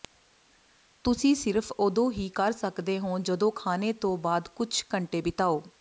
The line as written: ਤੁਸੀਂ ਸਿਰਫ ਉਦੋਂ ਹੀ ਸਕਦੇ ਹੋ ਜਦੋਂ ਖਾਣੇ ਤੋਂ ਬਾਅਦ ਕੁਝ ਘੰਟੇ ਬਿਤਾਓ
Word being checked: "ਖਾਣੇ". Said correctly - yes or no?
yes